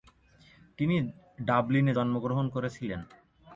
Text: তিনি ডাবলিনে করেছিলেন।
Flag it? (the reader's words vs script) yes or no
yes